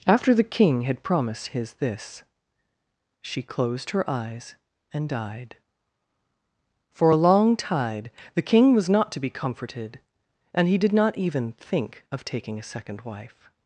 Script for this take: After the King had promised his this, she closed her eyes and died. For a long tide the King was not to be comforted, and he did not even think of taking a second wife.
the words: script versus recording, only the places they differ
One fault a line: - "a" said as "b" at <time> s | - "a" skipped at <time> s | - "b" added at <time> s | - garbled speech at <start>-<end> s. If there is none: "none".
none